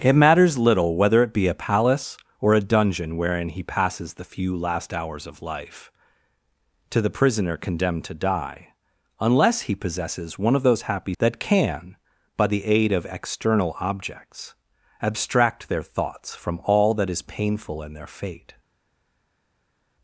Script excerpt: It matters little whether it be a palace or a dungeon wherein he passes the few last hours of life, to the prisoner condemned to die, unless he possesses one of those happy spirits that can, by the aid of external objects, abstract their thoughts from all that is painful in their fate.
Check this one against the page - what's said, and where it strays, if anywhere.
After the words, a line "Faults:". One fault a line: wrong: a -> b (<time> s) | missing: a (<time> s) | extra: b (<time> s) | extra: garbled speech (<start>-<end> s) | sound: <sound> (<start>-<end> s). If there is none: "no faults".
It matters little whether it be a palace or a dungeon wherein he passes the few last hours of life, to the prisoner condemned to die, unless he possesses one of those happy that can, by the aid of external objects, abstract their thoughts from all that is painful in their fate.
Faults:
missing: spirits (11.1 s)